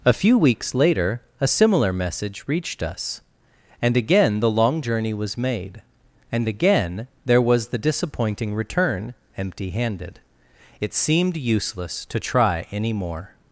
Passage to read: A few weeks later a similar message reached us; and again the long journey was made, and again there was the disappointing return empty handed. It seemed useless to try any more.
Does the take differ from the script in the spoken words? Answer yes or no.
no